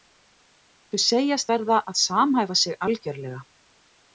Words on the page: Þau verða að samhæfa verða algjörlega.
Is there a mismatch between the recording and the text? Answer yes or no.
yes